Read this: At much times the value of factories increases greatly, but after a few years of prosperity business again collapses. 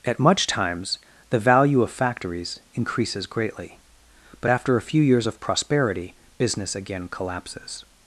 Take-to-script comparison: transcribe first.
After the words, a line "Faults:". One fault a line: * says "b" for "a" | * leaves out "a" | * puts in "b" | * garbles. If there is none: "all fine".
At much times the value of factories increases greatly, but after a few years of prosperity business again collapses.
Faults:
all fine